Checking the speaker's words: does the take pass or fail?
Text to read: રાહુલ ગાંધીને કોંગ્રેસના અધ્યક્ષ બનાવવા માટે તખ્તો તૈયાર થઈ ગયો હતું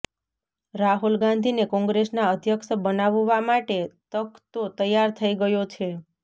fail